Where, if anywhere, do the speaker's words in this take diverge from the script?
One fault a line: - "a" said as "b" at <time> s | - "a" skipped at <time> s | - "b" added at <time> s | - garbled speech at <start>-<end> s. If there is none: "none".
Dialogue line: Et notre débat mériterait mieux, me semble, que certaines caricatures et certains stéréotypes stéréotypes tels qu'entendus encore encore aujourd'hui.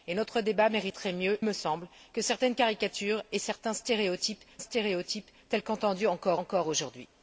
none